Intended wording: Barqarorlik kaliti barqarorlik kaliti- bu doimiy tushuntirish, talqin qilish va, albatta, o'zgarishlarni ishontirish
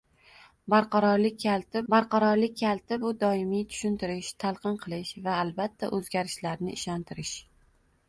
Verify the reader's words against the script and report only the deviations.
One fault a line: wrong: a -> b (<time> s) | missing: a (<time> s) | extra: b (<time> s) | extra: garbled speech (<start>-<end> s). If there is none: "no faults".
no faults